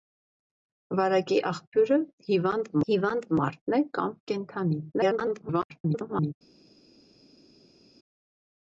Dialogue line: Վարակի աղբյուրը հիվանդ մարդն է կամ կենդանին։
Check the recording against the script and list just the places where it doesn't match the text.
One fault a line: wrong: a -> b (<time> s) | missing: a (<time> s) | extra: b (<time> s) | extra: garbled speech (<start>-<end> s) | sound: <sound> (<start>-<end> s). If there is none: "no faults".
extra: հիվանդ (2.9 s)
extra: garbled speech (4.9-6.3 s)